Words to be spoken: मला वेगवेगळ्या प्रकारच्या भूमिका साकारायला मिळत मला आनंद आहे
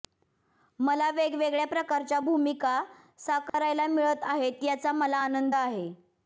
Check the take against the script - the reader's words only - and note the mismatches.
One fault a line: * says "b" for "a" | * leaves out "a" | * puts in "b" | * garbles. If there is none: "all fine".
* puts in "आहेत याचा"